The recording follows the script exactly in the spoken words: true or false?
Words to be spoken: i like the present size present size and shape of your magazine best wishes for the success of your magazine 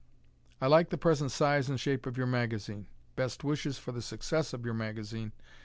false